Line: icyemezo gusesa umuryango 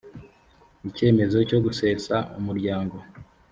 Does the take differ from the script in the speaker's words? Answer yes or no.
yes